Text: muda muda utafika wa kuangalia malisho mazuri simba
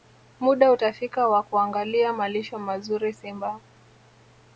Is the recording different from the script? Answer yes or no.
yes